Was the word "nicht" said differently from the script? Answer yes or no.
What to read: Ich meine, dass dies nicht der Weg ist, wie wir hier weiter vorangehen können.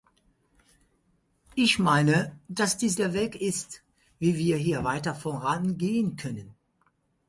yes